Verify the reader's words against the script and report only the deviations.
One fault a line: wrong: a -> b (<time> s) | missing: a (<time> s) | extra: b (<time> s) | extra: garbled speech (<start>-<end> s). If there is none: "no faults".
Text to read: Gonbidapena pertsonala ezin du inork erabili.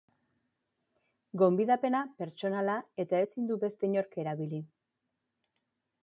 extra: eta (3.0 s)
extra: beste (3.6 s)